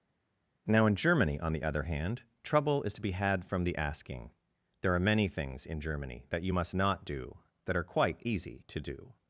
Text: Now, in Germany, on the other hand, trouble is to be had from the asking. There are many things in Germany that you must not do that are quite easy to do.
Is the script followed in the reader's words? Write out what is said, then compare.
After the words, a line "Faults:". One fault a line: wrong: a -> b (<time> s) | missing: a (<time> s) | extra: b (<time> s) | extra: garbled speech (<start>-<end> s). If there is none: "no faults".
Now, in Germany, on the other hand, trouble is to be had from the asking. There are many things in Germany that you must not do that are quite easy to do.
Faults:
no faults